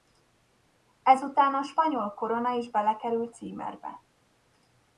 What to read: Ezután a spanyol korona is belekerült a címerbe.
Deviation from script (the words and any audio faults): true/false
true